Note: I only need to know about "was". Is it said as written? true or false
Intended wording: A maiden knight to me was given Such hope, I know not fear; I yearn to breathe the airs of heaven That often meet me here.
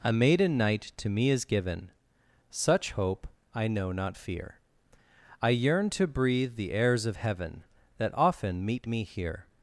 false